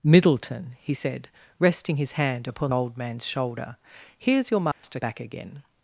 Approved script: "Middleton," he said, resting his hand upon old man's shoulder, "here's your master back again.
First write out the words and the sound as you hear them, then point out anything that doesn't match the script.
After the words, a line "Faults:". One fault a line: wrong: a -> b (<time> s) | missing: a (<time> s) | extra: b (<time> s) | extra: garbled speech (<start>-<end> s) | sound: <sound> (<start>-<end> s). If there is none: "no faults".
"Middleton," he said, resting his hand upon old man's shoulder, "here's your master back again.
Faults:
sound: dropout (4.7-4.8 s)